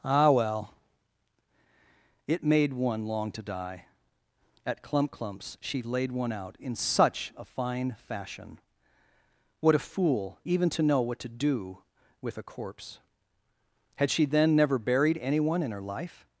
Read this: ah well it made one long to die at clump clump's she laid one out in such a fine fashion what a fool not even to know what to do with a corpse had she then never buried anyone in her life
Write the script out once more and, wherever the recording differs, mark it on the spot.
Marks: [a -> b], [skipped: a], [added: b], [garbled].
ah well it made one long to die at clump clump's she laid one out in such a fine fashion what a fool [skipped: not] even to know what to do with a corpse had she then never buried anyone in her life